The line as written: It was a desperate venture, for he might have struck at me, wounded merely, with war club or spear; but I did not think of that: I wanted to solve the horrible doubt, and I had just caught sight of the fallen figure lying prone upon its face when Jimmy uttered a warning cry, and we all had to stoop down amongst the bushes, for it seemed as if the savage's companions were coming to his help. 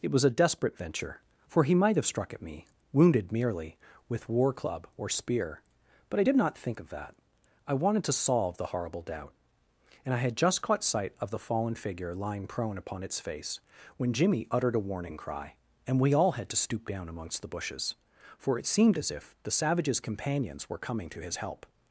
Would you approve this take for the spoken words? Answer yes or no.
yes